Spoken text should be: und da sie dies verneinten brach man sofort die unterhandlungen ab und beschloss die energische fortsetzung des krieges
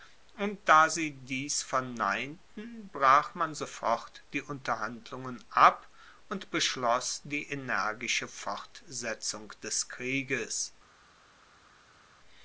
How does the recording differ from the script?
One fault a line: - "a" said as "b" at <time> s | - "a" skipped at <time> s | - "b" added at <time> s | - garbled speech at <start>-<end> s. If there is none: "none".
none